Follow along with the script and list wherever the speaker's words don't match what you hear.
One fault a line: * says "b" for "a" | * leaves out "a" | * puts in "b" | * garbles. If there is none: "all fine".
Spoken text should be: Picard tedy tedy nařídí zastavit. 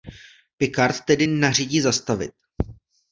* leaves out "tedy"